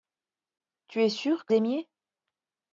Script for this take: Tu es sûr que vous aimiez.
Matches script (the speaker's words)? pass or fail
fail